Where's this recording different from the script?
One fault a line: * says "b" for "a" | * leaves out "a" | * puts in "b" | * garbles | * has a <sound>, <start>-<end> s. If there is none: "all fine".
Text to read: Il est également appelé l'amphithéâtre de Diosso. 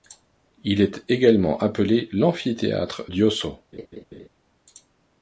* leaves out "de"
* has a laugh, 3.7-4.3 s